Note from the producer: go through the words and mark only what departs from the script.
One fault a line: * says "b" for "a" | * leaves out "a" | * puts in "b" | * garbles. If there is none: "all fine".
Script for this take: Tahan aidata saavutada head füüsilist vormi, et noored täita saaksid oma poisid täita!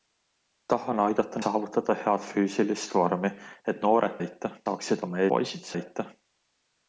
all fine